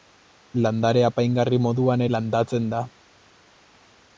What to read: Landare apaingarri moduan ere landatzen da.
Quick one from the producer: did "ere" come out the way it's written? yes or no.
no